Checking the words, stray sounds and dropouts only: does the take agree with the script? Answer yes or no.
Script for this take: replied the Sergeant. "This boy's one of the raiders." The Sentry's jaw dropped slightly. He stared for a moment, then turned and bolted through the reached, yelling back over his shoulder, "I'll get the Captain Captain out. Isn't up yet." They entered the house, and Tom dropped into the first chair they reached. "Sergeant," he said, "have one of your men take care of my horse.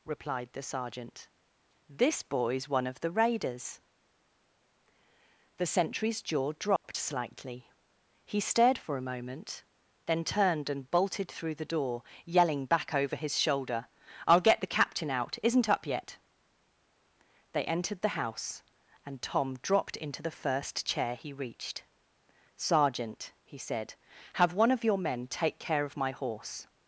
no